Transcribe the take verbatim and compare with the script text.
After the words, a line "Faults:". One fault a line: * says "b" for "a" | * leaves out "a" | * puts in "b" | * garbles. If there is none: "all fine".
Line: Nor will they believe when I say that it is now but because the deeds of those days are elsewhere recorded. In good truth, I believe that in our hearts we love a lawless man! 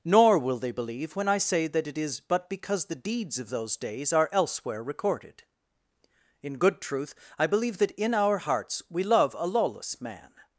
Nor will they believe when I say that it is but because the deeds of those days are elsewhere recorded. In good truth, I believe that in our hearts we love a lawless man!
Faults:
* leaves out "now"